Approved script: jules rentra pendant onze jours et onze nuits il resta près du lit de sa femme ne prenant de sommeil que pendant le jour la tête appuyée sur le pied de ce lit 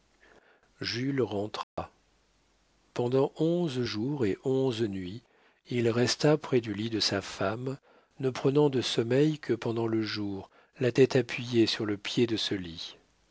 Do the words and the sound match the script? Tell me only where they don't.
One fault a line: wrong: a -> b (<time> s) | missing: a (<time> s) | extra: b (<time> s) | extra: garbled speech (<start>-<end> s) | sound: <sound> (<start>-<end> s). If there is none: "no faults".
sound: dropout (1.6-1.8 s)